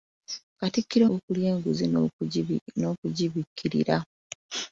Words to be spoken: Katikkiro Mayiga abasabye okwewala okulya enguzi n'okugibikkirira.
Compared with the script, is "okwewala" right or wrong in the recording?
wrong